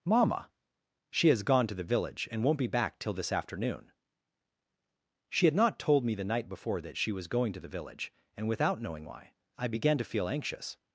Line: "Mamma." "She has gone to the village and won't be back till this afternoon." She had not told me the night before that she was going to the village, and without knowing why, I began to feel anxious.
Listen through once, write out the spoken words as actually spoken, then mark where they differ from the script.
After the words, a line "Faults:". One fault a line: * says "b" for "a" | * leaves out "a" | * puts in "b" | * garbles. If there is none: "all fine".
"Mamma." "She has gone to the village and won't be back till this afternoon." She had not told me the night before that she was going to the village, and without knowing why, I began to feel anxious.
Faults:
all fine